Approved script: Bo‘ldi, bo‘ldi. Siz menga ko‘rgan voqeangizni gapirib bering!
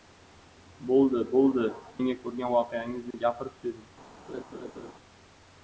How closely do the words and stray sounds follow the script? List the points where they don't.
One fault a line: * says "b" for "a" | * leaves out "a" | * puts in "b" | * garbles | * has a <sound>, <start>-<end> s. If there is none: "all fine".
* leaves out "Siz"
* has a dropout, 3.1-3.1 s
* has a laugh, 4.3-4.9 s